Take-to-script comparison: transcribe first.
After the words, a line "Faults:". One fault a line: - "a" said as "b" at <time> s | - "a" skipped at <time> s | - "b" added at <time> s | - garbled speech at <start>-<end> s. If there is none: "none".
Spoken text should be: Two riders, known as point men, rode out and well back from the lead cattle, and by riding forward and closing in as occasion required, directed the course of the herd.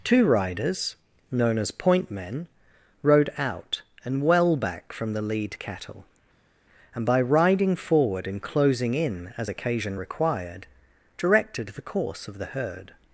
Two riders, known as point men, rode out and well back from the lead cattle, and by riding forward and closing in as occasion required, directed the course of the herd.
Faults:
none